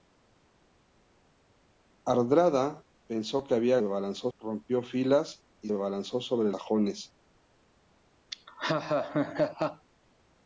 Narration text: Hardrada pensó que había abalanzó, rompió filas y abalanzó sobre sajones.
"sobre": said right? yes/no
yes